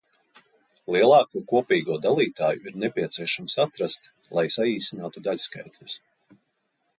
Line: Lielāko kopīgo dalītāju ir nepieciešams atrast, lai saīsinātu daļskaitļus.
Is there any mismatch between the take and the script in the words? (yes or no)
no